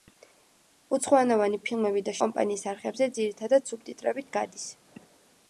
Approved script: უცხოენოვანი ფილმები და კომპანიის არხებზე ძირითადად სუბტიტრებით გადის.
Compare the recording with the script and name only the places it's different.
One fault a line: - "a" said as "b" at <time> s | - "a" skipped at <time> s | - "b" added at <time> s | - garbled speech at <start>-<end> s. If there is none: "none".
none